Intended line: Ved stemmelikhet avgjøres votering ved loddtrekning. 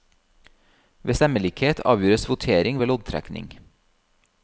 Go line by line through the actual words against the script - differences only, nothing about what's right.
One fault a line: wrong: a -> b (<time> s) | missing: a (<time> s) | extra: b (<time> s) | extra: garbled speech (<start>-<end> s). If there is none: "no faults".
no faults